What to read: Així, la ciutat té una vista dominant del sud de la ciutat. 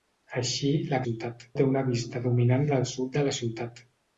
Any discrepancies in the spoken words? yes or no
no